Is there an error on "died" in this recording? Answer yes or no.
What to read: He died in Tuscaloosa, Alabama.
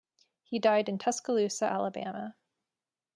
no